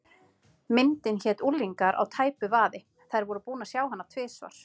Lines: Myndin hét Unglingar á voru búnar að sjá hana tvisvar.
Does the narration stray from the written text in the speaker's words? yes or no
yes